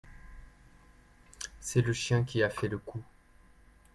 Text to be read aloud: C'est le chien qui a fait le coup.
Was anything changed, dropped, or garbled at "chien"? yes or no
no